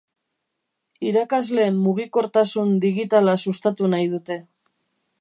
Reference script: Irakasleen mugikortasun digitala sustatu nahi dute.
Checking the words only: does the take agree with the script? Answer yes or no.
yes